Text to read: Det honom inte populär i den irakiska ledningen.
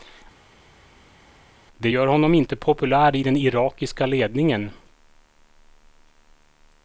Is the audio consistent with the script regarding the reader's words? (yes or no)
no